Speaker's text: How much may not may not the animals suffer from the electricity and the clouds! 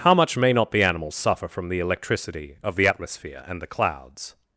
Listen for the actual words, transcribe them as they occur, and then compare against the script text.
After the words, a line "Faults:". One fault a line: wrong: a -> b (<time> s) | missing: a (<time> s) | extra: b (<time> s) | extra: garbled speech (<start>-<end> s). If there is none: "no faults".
How much may not the animals suffer from the electricity of the atmosphere and the clouds!
Faults:
missing: may not (0.7 s)
extra: of the atmosphere (2.6 s)